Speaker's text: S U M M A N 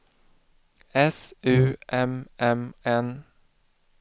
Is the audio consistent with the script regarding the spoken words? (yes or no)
no